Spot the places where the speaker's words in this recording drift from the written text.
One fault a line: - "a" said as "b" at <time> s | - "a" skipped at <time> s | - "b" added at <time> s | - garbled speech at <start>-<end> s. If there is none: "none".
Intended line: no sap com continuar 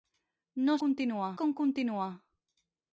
- "sap" said as "continuar" at 0.8 s